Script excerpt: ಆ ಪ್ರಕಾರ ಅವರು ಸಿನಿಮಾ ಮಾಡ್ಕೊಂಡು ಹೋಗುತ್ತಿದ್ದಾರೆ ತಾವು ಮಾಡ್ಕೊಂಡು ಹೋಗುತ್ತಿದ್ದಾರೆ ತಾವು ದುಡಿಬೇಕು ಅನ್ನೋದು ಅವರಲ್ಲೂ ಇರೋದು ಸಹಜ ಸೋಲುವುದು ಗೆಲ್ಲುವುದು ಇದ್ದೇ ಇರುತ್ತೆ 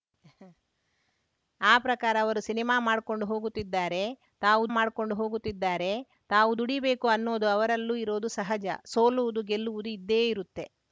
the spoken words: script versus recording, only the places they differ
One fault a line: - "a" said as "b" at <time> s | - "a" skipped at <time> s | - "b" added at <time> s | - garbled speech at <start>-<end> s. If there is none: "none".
none